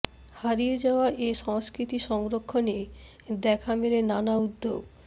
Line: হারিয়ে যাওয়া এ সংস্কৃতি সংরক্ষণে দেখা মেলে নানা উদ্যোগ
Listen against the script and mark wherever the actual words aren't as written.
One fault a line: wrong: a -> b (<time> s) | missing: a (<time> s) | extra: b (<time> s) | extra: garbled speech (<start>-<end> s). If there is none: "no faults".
no faults